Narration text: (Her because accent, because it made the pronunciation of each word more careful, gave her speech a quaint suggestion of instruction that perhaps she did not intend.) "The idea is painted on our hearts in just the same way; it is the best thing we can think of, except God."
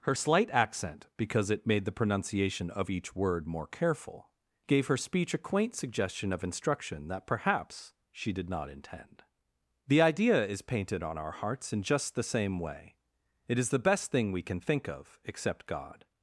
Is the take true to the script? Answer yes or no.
no